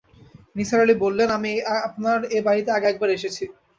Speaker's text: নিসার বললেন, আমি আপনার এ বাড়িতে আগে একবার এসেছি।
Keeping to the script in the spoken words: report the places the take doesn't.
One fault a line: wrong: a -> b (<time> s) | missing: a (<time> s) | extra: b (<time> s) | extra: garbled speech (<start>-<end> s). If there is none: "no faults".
extra: আলি (0.8 s)